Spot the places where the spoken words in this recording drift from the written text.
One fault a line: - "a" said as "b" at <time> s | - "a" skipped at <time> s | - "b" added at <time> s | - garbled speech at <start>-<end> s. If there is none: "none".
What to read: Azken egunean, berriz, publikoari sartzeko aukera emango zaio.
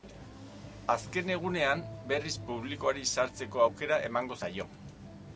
none